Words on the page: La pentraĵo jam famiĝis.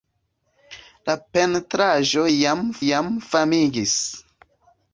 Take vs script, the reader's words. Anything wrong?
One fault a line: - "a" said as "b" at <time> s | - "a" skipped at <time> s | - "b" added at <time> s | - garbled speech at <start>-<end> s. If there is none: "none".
- "jam" added at 2.8 s